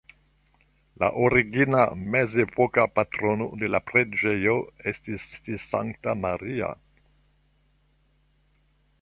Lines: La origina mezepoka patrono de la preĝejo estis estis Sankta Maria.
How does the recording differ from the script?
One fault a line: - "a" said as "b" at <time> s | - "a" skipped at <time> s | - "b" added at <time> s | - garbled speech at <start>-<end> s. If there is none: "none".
none